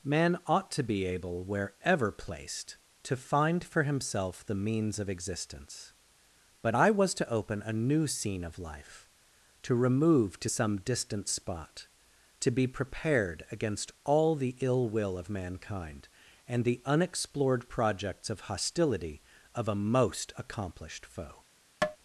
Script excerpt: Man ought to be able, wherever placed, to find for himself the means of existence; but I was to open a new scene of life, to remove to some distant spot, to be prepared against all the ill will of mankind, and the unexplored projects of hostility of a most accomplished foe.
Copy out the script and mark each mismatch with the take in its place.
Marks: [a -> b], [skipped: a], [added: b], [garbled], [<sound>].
Man ought to be able, wherever placed, to find for himself the means of existence; but I was to open a new scene of life, to remove to some distant spot, to be prepared against all the ill will of mankind, and the unexplored projects of hostility of a most accomplished foe. [tap]